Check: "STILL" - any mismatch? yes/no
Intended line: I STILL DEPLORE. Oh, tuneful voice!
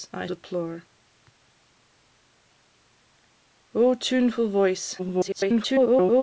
yes